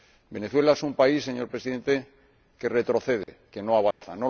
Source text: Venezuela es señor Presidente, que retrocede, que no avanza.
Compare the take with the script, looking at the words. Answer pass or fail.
fail